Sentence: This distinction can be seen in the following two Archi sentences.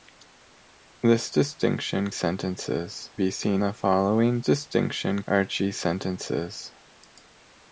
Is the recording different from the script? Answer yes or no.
yes